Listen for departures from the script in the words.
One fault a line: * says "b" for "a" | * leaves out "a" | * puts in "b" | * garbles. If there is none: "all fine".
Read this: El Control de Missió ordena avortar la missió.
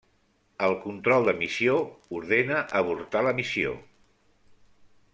all fine